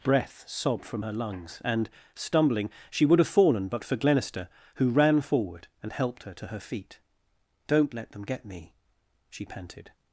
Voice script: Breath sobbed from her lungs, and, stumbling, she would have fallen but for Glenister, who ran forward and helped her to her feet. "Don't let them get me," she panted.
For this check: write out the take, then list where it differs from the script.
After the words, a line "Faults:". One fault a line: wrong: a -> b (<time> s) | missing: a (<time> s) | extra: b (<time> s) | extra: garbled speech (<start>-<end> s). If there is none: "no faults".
Breath sobbed from her lungs, and, stumbling, she would have fallen but for Glenister, who ran forward and helped her to her feet. "Don't let them get me," she panted.
Faults:
no faults